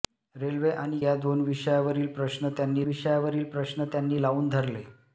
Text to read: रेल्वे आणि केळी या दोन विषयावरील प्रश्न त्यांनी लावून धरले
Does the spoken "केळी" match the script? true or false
false